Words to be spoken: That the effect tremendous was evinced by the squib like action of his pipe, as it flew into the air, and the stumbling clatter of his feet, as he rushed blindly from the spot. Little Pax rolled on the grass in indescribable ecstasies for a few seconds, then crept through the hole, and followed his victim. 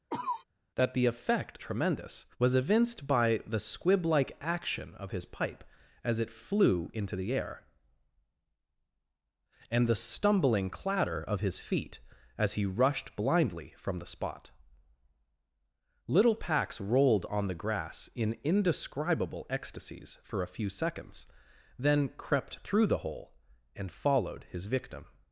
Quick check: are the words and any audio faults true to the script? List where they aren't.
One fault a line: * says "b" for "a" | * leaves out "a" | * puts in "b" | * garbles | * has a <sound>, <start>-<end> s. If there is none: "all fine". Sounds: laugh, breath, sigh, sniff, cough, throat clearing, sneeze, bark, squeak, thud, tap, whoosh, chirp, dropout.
* has a cough, 0.1-0.4 s